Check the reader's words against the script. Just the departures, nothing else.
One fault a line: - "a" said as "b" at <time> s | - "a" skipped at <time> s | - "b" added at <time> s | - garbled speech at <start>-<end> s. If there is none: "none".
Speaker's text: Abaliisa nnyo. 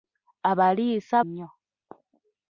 none